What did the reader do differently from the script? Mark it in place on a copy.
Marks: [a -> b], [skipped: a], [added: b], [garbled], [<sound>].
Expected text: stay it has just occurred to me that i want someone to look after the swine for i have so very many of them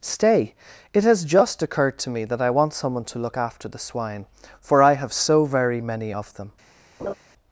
stay it has just occurred to me that i want someone to look after the swine for i have so very many of them [laugh]